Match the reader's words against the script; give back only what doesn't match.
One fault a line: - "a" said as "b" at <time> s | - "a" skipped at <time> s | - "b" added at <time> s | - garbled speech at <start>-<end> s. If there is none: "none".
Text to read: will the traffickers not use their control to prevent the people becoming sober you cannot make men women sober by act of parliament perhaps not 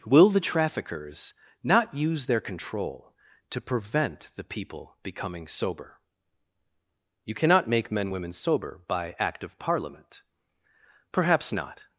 none